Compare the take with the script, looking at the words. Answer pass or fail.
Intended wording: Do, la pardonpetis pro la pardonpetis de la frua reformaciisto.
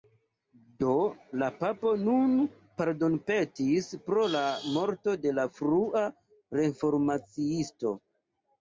fail